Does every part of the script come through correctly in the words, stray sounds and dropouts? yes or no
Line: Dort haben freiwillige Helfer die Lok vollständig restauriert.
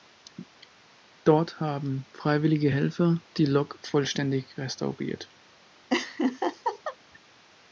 no